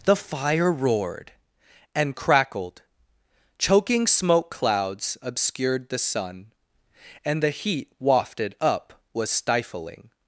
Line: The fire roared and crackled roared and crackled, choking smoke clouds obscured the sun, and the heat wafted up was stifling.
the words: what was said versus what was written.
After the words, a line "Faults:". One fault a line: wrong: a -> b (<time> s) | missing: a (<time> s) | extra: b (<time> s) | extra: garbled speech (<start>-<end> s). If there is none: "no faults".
The fire roared and crackled, choking smoke clouds obscured the sun, and the heat wafted up was stifling.
Faults:
missing: roared and crackled (2.8 s)